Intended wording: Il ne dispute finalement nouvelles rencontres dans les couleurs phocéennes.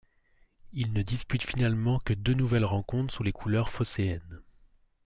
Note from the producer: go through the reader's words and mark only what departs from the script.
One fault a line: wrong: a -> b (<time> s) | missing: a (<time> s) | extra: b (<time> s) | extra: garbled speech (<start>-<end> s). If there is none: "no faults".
extra: que deux (2.0 s)
wrong: dans -> sous (3.1 s)